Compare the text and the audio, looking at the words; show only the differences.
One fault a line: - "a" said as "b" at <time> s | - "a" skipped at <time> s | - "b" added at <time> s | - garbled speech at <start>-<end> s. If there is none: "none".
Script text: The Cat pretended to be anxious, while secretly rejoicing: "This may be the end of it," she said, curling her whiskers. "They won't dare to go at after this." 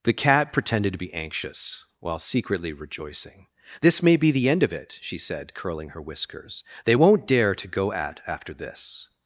none